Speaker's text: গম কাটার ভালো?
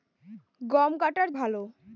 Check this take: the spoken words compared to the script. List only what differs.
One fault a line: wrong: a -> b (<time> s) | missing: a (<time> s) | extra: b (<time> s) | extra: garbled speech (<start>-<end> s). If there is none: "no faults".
no faults